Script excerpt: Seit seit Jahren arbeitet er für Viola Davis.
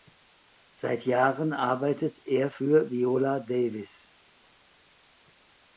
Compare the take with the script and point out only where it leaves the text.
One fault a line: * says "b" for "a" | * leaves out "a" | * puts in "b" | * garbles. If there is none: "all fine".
* leaves out "seit"